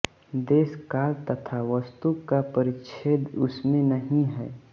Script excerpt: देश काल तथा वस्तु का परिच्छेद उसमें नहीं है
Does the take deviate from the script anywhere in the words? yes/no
no